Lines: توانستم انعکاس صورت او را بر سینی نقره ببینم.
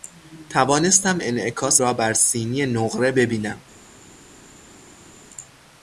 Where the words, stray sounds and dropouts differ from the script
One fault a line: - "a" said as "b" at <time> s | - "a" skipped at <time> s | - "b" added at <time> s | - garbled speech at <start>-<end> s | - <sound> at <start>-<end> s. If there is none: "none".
- "صورت او" skipped at 1.8 s